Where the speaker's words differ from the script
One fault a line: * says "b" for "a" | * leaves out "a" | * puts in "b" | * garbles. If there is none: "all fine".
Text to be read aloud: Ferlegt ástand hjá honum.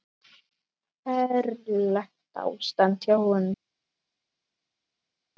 all fine